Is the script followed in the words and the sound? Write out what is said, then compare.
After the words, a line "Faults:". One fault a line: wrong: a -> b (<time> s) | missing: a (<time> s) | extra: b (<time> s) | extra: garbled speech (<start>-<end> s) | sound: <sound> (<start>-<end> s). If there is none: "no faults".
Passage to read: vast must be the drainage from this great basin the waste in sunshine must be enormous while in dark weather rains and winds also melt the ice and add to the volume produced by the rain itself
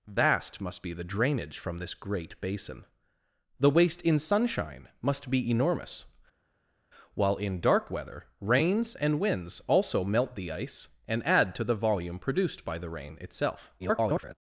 vast must be the drainage from this great basin the waste in sunshine must be enormous while in dark weather rains and winds also melt the ice and add to the volume produced by the rain itself [garbled]
Faults:
extra: garbled speech (13.8-14.3 s)